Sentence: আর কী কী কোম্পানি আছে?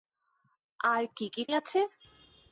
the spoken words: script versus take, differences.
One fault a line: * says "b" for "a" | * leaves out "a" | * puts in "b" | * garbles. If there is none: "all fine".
* leaves out "কোম্পানি"